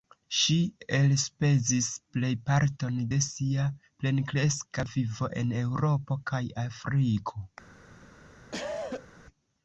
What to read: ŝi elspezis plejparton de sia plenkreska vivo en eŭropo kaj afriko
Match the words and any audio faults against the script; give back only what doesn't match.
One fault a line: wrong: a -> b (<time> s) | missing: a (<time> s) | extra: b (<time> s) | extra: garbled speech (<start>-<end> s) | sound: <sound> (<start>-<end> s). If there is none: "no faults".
sound: cough (8.5-9.1 s)